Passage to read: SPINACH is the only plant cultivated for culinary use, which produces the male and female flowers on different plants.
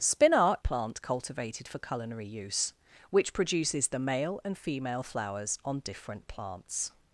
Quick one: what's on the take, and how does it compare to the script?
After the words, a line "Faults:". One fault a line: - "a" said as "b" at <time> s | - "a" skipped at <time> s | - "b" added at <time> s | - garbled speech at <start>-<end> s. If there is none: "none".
SPINACH plant cultivated for culinary use, which produces the male and female flowers on different plants.
Faults:
- "is the only" skipped at 0.6 s